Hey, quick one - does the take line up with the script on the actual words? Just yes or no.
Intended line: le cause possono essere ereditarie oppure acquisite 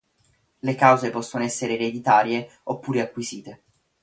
yes